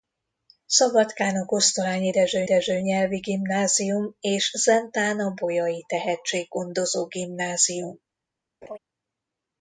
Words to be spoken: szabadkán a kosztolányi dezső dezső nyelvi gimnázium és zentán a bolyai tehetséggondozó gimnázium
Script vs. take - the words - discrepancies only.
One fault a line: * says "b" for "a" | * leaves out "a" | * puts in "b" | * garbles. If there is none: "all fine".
all fine